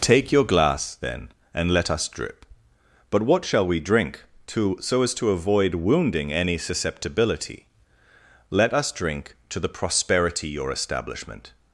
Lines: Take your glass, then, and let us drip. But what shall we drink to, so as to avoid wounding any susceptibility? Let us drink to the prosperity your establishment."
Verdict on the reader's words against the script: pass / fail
pass